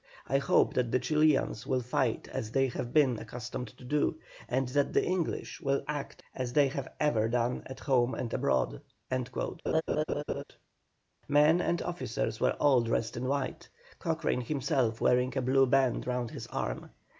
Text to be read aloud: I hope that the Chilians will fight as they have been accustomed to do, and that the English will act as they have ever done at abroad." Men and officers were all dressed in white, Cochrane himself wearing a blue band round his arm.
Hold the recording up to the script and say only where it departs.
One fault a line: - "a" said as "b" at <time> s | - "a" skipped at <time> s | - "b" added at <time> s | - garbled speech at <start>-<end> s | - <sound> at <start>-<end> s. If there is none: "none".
- "home and" added at 7.8 s
- laugh at 9.7-10.4 s